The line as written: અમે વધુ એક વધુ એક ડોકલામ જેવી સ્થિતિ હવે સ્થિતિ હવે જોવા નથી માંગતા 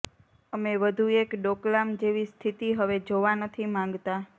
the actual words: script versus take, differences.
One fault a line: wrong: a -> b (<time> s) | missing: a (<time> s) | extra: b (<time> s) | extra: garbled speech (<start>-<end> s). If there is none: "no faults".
missing: વધુ એક (1.4 s)
missing: સ્થિતિ હવે (3.0 s)